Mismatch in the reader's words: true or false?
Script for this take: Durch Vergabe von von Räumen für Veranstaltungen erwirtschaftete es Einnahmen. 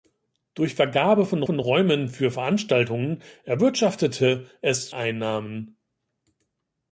false